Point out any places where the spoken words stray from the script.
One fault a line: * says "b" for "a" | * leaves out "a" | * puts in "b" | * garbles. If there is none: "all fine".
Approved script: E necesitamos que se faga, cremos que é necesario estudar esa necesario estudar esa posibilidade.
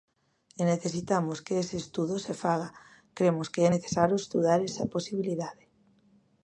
* puts in "ese estudo"
* leaves out "necesario estudar esa"